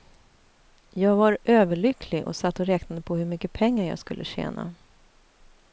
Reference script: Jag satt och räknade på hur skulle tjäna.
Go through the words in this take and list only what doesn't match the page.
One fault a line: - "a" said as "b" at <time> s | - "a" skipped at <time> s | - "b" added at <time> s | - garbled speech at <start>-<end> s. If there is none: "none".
- "var överlycklig och" added at 1.1 s
- "mycket pengar jag" added at 3.2 s